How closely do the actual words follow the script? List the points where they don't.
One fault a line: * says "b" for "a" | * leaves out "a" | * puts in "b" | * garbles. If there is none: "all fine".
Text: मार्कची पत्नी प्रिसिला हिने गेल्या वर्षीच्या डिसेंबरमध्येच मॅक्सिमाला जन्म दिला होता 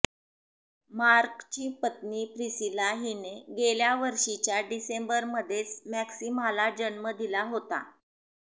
all fine